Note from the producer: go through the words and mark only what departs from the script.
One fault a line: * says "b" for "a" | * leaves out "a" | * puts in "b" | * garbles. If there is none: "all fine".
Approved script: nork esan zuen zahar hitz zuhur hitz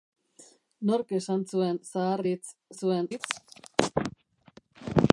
* says "zuen" for "zuhur"